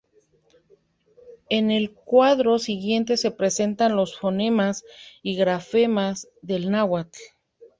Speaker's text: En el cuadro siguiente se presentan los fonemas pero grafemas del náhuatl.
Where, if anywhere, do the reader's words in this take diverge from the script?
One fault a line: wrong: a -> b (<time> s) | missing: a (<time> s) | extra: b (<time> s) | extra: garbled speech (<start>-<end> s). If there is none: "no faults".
wrong: pero -> y (5.2 s)